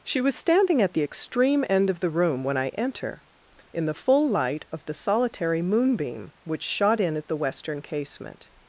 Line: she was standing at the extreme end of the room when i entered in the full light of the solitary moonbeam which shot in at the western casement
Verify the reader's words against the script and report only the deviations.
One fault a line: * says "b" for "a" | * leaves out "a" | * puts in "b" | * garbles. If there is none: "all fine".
* says "enter" for "entered"